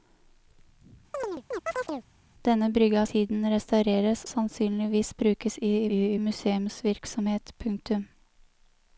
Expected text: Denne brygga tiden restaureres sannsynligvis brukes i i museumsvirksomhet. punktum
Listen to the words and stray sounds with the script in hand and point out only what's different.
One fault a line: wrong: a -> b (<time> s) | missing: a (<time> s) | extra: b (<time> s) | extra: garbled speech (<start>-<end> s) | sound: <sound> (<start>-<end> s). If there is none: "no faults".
sound: chirp (1.1-2.1 s)